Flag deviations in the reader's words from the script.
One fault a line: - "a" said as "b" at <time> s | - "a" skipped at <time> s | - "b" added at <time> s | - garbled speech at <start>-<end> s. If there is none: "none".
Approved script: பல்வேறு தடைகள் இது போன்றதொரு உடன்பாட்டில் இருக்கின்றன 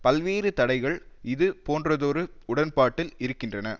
none